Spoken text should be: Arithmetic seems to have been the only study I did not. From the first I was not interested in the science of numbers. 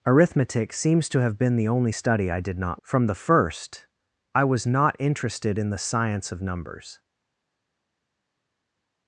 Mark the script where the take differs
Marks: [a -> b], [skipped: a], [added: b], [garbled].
Arithmetic seems to have been the only study I did not. From the first I was not interested in the science of numbers.